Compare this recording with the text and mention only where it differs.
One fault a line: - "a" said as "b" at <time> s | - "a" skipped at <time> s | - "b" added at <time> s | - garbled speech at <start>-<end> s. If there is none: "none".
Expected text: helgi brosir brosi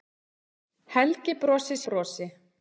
none